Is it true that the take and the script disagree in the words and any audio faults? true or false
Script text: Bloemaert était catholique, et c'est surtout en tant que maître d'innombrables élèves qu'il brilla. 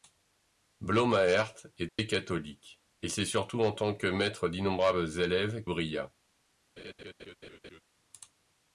true